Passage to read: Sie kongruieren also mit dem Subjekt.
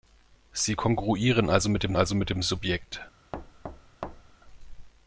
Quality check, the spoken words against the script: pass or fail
fail